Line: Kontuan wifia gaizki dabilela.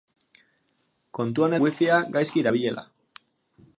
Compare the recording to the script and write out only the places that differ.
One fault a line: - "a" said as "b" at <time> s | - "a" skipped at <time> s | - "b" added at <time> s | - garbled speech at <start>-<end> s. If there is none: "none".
none